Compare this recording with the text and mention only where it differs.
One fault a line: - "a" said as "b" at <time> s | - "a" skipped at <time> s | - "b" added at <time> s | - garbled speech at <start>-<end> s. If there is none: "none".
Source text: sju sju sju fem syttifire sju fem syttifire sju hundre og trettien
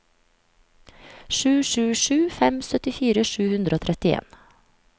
- "fem syttifire sju" skipped at 3.5 s